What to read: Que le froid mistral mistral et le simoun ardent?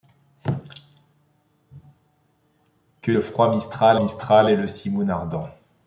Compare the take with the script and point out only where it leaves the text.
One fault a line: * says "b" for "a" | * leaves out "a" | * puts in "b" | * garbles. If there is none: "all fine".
all fine